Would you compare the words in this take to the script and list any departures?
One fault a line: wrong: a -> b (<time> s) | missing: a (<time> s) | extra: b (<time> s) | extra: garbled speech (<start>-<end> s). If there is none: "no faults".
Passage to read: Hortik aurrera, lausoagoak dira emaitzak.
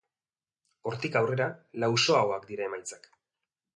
no faults